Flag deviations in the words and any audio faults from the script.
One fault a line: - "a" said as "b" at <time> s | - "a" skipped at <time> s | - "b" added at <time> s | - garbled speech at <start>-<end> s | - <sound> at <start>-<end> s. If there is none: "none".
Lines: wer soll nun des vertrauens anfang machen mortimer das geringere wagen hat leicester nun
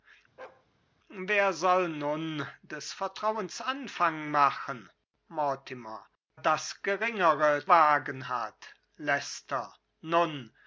- bark at 0.4-0.7 s